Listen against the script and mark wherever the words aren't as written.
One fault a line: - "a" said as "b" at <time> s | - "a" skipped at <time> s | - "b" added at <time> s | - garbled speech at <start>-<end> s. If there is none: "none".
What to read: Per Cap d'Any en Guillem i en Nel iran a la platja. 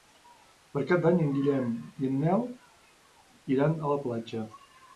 none